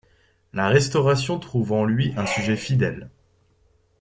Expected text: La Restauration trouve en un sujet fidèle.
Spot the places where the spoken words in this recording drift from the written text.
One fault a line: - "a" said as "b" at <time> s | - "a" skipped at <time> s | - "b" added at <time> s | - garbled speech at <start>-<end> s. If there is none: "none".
- "lui" added at 1.9 s